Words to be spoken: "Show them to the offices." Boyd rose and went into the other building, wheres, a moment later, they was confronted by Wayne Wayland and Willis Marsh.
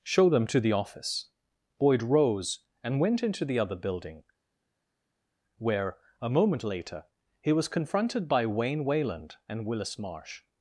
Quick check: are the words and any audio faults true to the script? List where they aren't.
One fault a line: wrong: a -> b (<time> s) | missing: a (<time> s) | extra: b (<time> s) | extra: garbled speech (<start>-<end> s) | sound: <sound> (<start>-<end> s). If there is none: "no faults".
wrong: offices -> office (0.7 s)
wrong: wheres -> where (5.6 s)
wrong: they -> he (7.4 s)